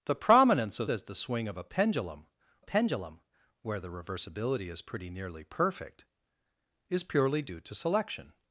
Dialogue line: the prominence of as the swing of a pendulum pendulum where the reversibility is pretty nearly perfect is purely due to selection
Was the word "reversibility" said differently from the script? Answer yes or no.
no